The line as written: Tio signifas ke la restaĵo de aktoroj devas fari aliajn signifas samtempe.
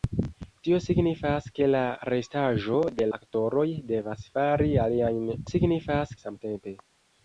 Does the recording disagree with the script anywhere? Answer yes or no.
no